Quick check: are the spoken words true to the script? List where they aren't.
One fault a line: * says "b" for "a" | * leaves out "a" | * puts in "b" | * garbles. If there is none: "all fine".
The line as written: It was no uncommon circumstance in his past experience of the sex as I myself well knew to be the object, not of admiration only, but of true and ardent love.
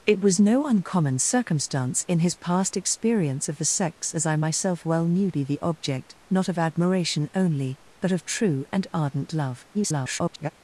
* leaves out "to"
* garbles